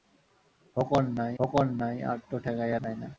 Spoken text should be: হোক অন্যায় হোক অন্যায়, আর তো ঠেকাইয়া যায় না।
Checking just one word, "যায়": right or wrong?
right